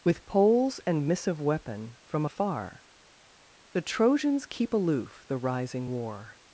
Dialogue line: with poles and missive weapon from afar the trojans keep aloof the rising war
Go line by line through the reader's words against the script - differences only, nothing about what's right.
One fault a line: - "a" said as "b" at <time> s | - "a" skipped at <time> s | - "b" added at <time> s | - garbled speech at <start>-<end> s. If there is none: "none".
none